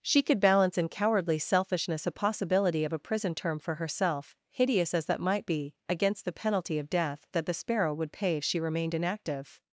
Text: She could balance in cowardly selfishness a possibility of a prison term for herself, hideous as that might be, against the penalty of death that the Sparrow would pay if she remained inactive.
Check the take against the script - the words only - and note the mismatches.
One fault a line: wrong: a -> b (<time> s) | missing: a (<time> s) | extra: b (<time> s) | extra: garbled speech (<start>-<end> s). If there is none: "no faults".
no faults